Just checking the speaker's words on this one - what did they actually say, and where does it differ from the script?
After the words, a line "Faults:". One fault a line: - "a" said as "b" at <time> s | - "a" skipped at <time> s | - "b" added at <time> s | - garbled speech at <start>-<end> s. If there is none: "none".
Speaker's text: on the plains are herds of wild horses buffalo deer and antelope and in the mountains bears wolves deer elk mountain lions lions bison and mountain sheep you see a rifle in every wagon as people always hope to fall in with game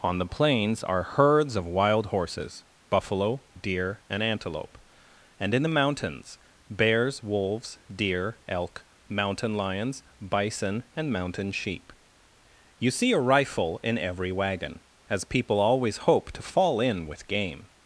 on the plains are herds of wild horses buffalo deer and antelope and in the mountains bears wolves deer elk mountain lions bison and mountain sheep you see a rifle in every wagon as people always hope to fall in with game
Faults:
- "lions" skipped at 10.0 s